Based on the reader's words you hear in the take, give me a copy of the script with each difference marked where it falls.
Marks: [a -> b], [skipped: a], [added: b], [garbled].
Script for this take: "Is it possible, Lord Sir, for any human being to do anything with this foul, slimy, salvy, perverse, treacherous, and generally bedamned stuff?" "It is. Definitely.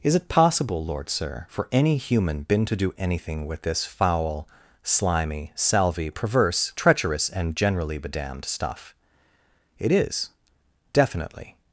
"Is it possible, Lord Sir, for any human [being -> been] to do anything with this foul, slimy, salvy, perverse, treacherous, and generally bedamned stuff?" "It is. Definitely.